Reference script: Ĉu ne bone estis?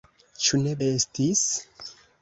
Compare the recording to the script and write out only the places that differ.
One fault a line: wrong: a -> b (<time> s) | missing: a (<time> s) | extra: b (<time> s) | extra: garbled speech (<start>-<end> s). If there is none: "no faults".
missing: bone (0.7 s)